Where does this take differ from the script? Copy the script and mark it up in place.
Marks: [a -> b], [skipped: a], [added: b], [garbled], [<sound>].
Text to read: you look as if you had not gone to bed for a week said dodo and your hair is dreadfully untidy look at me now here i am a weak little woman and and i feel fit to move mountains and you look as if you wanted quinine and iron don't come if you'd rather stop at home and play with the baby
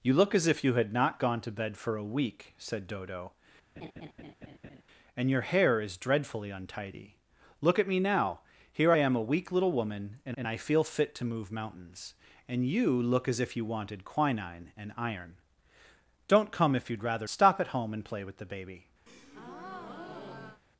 you look as if you had not gone to bed for a week said dodo [laugh] and your hair is dreadfully untidy look at me now here i am a weak little woman and and i feel fit to move mountains and you look as if you wanted quinine and iron don't come if you'd rather stop at home and play with the baby [breath]